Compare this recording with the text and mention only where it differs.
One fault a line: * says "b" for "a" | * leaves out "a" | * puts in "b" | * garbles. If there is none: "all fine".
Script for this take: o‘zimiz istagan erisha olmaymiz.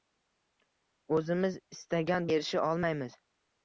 all fine